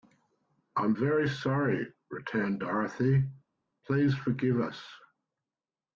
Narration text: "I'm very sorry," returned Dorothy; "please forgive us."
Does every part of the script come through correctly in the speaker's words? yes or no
yes